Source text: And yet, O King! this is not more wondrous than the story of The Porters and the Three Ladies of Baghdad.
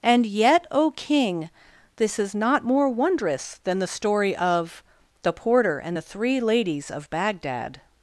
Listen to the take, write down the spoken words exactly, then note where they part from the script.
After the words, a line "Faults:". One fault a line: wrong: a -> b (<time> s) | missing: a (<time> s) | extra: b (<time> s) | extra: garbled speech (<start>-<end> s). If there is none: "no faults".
And yet, O King! this is not more wondrous than the story of The Porter and the Three Ladies of Baghdad.
Faults:
wrong: Porters -> Porter (5.3 s)